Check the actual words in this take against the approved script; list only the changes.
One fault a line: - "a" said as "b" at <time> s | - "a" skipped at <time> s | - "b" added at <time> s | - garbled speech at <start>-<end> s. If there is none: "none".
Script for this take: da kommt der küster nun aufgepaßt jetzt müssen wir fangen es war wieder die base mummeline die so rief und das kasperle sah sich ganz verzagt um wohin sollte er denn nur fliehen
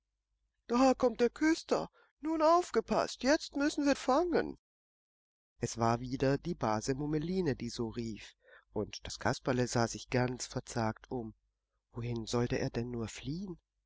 none